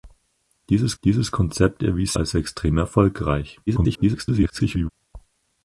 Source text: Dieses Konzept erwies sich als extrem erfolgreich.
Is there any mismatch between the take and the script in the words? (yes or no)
yes